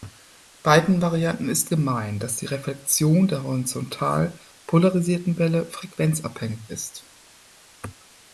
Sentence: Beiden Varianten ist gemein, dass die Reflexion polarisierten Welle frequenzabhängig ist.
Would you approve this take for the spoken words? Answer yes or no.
no